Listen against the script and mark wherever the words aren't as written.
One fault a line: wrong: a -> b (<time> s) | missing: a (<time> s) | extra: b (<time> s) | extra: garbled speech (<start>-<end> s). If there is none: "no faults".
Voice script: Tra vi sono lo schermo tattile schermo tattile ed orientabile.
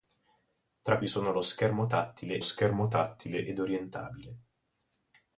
no faults